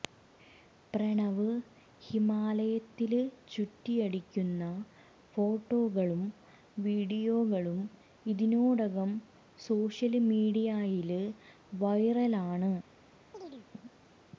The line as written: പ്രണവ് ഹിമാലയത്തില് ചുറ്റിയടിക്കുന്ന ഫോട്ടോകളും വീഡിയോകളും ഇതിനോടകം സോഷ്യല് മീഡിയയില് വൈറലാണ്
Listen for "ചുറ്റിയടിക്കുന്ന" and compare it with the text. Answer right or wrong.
right